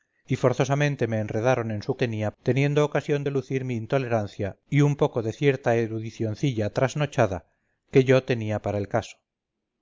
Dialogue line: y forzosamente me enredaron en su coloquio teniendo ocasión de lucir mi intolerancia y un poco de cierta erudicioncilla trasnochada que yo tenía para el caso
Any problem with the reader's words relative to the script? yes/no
yes